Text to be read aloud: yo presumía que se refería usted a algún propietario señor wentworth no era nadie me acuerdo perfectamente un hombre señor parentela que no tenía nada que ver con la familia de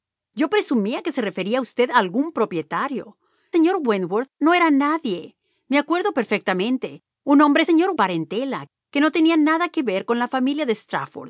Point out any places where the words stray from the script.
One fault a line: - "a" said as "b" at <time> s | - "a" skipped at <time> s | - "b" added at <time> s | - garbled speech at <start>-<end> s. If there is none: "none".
none